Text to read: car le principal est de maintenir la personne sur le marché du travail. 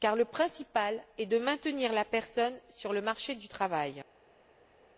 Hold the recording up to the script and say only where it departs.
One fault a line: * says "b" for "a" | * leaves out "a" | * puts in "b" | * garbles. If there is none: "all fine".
all fine